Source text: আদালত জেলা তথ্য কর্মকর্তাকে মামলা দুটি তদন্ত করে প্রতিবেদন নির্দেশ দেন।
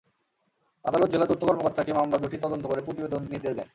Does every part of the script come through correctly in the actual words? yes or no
yes